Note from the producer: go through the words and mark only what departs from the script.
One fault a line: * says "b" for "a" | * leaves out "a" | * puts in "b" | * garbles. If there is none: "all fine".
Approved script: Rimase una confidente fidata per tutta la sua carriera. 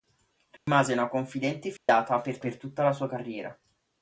* puts in "per"